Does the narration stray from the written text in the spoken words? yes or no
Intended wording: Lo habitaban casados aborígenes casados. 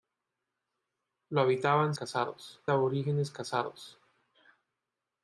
no